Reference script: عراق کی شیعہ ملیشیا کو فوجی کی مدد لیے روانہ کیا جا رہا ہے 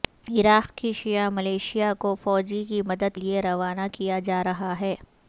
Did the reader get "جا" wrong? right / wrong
right